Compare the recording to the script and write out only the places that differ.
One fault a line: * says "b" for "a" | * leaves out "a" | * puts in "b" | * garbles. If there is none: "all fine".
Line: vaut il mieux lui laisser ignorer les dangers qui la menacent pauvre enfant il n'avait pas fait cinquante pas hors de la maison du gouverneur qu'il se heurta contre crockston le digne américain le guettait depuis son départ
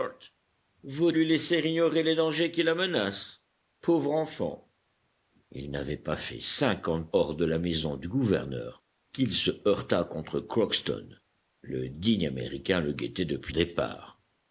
* leaves out "il mieux"
* leaves out "pas"
* leaves out "son"